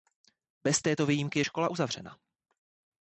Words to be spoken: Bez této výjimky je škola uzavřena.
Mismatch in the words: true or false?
false